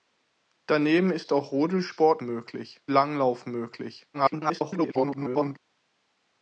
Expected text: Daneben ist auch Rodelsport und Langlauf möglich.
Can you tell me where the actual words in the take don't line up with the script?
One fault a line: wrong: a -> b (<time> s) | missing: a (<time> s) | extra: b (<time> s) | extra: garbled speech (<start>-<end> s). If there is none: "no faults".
wrong: und -> möglich (2.2 s)
extra: garbled speech (4.1-5.6 s)